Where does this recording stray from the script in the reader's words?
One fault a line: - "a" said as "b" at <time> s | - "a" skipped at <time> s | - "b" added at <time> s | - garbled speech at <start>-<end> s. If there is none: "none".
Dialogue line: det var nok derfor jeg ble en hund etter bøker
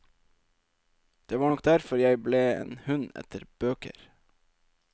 none